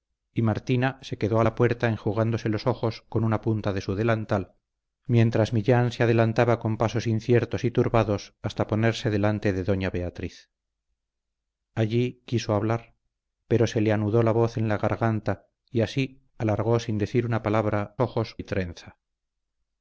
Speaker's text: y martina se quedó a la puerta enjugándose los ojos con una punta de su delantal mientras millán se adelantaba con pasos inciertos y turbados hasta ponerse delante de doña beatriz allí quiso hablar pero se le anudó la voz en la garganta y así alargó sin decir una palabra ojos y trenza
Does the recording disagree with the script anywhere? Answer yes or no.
no